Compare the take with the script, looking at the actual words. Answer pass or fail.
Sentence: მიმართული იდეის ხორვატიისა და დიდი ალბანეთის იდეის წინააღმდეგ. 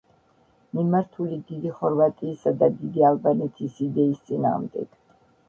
fail